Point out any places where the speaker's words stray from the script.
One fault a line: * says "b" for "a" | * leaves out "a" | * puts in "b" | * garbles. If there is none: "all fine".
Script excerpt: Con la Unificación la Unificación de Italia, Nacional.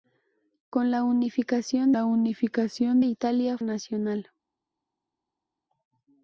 all fine